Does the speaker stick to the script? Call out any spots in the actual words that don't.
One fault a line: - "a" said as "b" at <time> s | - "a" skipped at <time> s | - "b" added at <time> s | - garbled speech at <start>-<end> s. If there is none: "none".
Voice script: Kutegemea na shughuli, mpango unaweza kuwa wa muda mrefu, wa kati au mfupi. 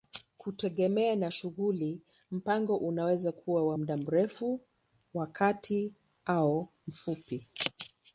none